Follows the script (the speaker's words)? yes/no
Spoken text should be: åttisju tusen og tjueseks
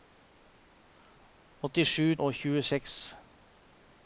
no